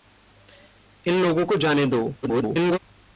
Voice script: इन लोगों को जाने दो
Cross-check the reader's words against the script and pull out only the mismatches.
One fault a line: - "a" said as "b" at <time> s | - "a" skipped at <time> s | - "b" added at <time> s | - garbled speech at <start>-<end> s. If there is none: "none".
- garbled speech at 2.2-2.8 s